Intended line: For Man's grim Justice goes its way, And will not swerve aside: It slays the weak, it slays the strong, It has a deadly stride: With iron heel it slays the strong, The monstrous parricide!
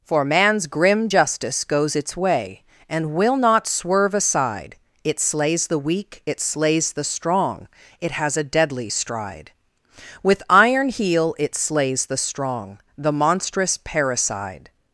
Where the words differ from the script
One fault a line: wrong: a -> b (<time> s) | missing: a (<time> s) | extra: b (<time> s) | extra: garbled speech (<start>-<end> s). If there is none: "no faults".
no faults